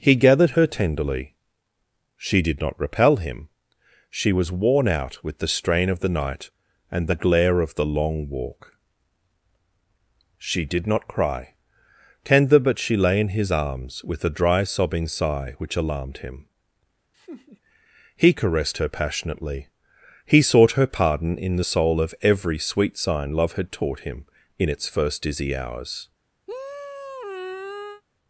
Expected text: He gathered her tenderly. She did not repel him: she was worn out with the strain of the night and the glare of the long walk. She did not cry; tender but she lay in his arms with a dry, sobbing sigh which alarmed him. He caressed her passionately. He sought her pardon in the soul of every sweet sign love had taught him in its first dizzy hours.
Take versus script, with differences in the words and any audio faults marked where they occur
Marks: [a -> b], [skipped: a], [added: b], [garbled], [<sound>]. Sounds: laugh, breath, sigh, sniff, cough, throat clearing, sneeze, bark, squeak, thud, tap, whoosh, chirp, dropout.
He gathered her tenderly. She did not repel him: she was worn out with the strain of the night and the glare of the long walk. She did not cry; tender but she lay in his arms with a dry, sobbing sigh which alarmed him. [laugh] He caressed her passionately. He sought her pardon in the soul of every sweet sign love had taught him in its first dizzy hours. [sigh]